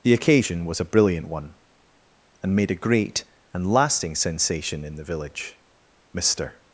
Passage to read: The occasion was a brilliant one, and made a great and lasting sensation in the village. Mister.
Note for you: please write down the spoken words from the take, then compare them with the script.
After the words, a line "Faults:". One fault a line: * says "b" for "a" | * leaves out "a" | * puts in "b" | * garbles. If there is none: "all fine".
The occasion was a brilliant one, and made a great and lasting sensation in the village. Mister.
Faults:
all fine